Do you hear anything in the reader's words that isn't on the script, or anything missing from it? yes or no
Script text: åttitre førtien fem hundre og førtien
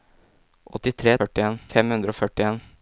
no